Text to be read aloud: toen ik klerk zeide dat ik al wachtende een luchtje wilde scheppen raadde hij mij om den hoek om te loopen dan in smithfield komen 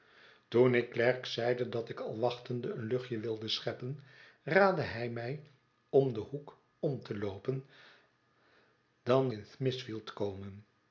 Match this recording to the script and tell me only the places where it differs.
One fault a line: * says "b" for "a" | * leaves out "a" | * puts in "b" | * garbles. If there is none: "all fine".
all fine